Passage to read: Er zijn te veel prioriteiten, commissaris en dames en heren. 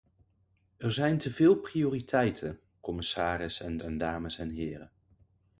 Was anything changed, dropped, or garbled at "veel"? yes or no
no